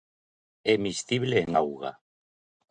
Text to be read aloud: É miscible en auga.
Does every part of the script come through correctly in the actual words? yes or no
yes